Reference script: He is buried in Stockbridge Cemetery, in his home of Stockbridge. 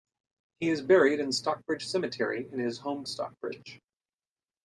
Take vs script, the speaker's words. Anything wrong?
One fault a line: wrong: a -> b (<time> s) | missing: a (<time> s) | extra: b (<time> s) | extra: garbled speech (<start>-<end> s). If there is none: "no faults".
no faults